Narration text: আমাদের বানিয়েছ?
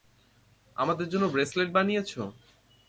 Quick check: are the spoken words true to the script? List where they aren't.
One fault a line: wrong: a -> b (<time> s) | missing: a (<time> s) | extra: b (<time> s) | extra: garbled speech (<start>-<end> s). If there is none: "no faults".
extra: জন্য ব্রেসলেট (1.1 s)